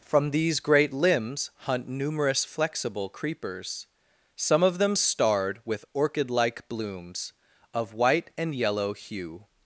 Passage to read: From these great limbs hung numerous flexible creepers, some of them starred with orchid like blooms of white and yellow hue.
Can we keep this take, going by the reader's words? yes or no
no